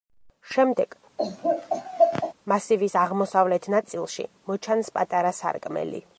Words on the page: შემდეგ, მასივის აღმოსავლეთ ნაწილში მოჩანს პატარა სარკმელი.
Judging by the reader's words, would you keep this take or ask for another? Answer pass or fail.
pass